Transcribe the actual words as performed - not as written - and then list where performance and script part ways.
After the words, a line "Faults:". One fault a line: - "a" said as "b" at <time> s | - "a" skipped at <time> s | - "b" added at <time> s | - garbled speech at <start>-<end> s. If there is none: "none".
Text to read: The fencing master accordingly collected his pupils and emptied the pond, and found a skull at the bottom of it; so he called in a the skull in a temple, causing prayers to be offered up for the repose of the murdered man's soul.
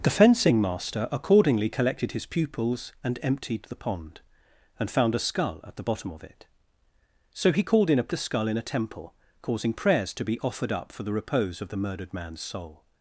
The fencing master accordingly collected his pupils and emptied the pond, and found a skull at the bottom of it; so he called in a the skull in a temple, causing prayers to be offered up for the repose of the murdered man's soul.
Faults:
none